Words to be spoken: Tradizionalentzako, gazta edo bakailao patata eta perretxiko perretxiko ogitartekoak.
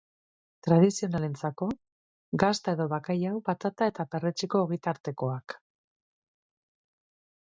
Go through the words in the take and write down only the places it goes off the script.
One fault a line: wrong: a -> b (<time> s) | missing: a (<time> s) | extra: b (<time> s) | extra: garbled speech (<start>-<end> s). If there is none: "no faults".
missing: perretxiko (4.6 s)